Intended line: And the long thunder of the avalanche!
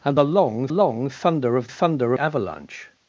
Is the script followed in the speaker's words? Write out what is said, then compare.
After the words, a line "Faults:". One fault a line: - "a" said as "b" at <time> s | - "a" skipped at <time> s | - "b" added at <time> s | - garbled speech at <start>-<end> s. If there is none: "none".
And the long long thunder of thunder avalanche!
Faults:
- "long" added at 0.7 s
- "the" said as "thunder" at 1.7 s